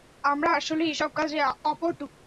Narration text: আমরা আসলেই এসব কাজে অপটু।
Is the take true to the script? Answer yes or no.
yes